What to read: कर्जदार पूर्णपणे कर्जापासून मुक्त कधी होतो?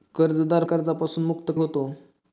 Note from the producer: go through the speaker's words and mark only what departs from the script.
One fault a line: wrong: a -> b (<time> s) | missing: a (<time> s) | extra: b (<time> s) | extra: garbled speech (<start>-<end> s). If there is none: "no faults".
missing: पूर्णपणे (0.6 s)
missing: कधी (1.5 s)